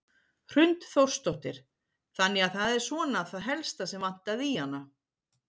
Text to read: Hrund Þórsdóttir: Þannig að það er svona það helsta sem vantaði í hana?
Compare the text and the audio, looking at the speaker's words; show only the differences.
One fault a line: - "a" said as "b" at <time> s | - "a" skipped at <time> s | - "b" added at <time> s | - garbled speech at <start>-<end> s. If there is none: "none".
none